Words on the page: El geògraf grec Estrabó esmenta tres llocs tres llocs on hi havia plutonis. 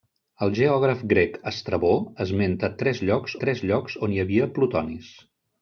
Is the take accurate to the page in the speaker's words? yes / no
yes